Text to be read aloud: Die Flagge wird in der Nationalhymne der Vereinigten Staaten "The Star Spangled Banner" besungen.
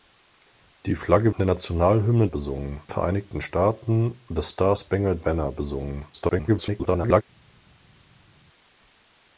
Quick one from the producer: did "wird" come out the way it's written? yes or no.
no